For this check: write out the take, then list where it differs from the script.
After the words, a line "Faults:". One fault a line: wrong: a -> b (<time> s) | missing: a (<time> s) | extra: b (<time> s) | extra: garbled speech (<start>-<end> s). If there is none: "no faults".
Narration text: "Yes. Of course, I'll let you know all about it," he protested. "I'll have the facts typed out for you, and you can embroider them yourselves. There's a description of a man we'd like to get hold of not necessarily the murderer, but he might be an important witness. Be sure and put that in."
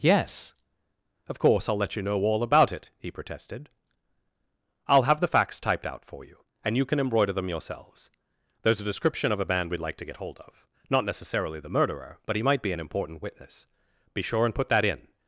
"Yes. Of course, I'll let you know all about it," he protested. "I'll have the facts typed out for you, and you can embroider them yourselves. There's a description of a man we'd like to get hold of not necessarily the murderer, but he might be an important witness. Be sure and put that in."
Faults:
no faults